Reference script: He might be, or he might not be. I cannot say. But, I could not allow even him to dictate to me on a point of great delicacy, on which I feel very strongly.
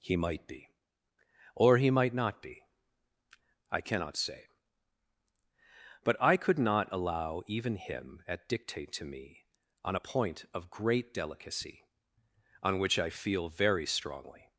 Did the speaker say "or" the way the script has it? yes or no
yes